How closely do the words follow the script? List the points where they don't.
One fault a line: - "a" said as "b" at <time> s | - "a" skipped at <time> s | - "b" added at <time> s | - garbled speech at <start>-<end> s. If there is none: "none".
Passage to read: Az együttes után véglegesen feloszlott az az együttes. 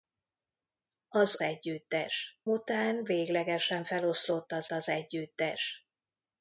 none